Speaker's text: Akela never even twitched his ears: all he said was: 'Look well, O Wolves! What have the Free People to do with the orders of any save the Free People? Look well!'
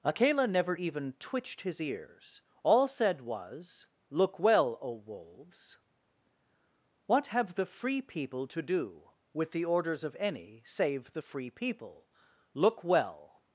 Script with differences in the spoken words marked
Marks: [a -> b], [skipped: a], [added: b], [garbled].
Akela never even twitched his ears: all [skipped: he] said was: 'Look well, O Wolves! What have the Free People to do with the orders of any save the Free People? Look well!'